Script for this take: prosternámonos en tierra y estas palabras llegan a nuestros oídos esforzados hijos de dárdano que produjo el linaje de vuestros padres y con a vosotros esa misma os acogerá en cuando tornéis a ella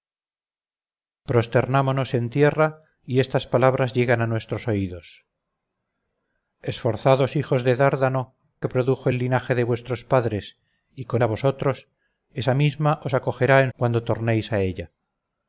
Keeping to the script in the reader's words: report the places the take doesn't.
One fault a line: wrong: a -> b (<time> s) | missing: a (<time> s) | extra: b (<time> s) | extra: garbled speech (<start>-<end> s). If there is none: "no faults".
no faults